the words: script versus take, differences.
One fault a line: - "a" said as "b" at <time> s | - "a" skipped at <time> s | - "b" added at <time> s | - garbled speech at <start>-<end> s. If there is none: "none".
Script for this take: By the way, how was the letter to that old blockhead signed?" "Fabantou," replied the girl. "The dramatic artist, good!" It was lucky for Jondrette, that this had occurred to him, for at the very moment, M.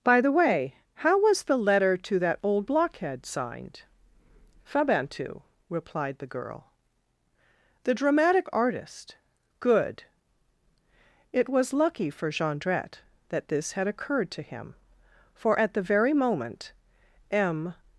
none